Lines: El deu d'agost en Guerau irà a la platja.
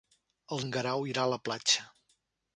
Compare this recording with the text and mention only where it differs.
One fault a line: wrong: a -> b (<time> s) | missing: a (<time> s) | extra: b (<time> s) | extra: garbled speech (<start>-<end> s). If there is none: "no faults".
missing: deu d'agost (0.6 s)